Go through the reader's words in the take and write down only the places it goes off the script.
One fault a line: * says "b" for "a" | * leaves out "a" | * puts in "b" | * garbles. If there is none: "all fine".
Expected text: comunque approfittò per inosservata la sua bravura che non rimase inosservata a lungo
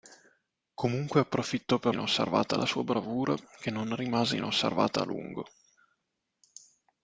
all fine